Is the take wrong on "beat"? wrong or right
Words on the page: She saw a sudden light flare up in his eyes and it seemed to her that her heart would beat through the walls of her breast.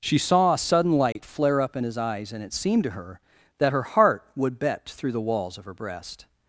wrong